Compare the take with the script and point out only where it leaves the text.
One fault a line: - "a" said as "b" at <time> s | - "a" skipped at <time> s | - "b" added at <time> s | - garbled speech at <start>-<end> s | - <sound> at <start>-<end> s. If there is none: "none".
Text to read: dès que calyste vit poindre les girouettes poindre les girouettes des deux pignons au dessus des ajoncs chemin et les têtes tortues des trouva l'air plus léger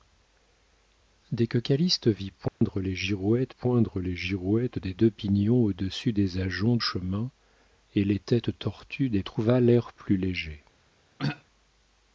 - dropout at 2.5-2.6 s
- throat clearing at 11.2-11.4 s